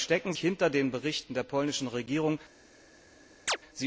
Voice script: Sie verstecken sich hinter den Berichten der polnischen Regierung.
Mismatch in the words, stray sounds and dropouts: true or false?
true